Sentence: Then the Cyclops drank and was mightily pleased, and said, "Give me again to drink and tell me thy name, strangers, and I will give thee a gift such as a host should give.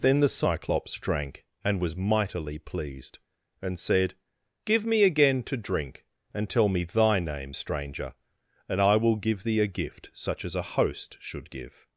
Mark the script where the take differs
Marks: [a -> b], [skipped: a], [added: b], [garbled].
Then the Cyclops drank and was mightily pleased, and said, "Give me again to drink and tell me thy name, [strangers, -> stranger] and I will give thee a gift such as a host should give.